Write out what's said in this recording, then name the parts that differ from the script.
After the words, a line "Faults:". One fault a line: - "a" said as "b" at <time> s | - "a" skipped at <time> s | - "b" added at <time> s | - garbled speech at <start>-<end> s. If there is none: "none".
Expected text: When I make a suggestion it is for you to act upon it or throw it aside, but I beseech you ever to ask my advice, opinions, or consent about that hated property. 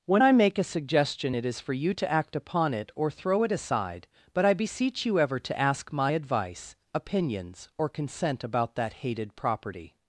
When I make a suggestion it is for you to act upon it or throw it aside, but I beseech you ever to ask my advice, opinions, or consent about that hated property.
Faults:
none